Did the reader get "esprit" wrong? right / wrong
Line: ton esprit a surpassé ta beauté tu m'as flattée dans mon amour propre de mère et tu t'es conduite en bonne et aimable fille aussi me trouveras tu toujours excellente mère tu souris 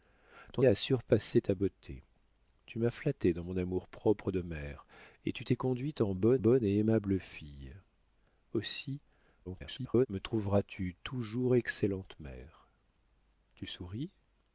wrong